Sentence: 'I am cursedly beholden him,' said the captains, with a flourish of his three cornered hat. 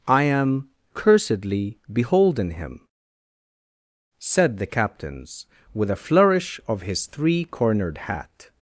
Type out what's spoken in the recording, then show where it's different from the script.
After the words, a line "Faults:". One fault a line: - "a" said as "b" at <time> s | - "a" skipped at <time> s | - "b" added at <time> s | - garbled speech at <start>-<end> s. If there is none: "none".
'I am cursedly beholden him,' said the captains, with a flourish of his three cornered hat.
Faults:
none